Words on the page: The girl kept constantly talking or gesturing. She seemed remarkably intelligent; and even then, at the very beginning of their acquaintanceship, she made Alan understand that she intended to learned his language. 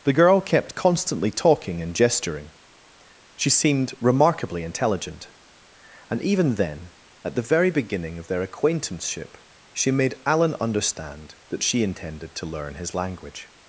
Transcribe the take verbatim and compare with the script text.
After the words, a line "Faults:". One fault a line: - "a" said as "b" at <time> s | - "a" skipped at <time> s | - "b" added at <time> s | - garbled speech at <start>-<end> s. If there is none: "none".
The girl kept constantly talking and gesturing. She seemed remarkably intelligent; and even then, at the very beginning of their acquaintanceship, she made Alan understand that she intended to learn his language.
Faults:
- "or" said as "and" at 1.8 s
- "learned" said as "learn" at 12.5 s